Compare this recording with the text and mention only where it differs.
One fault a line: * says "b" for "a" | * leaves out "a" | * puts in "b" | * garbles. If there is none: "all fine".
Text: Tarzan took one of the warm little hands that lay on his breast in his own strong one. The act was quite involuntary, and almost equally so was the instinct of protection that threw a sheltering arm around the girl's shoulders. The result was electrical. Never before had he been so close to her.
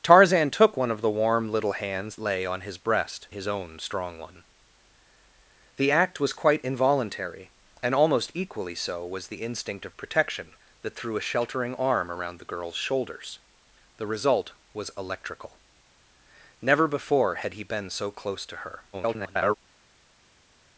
* leaves out "that"
* leaves out "in"
* garbles